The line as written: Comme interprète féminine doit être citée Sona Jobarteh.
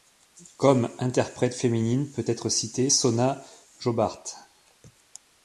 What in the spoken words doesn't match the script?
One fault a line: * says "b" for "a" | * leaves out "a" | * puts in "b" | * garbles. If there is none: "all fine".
* says "peut" for "doit"